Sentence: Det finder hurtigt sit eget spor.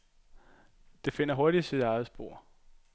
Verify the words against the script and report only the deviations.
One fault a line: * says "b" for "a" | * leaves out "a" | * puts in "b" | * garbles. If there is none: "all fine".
all fine